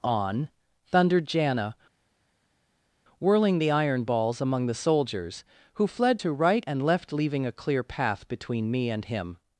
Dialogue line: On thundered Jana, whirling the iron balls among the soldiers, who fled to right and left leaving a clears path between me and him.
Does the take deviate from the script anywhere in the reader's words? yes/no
yes